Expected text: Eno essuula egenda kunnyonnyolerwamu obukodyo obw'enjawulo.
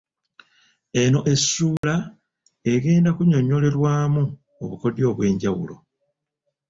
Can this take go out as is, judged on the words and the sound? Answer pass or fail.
fail